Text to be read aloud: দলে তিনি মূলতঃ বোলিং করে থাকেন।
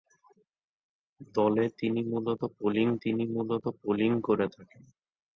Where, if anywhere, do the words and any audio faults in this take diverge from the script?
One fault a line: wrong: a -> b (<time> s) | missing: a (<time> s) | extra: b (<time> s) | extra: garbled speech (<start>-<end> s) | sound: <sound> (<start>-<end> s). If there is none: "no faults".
extra: তিনি মূলতঃ বোলিং (3.0 s)